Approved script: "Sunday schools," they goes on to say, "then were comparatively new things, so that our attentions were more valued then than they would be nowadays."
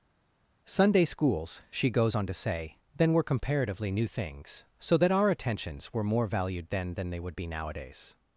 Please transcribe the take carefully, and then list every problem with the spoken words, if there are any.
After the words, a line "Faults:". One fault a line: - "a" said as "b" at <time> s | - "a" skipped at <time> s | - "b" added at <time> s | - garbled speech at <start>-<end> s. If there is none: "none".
"Sunday schools," she goes on to say, "then were comparatively new things, so that our attentions were more valued then than they would be nowadays."
Faults:
- "they" said as "she" at 1.7 s